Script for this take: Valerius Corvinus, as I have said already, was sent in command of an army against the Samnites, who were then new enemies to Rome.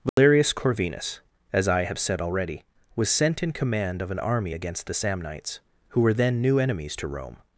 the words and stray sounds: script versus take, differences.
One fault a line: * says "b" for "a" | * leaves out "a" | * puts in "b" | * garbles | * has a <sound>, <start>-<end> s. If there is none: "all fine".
* has a dropout, 0.1-0.2 s